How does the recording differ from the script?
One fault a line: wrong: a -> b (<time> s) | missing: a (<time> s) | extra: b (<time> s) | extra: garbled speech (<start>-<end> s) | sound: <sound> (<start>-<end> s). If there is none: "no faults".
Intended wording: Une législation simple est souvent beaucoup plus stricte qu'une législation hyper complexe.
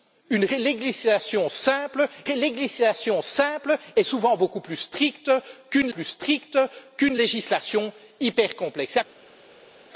extra: législation simple (2.2 s)
extra: plus stricte qu'une (5.9 s)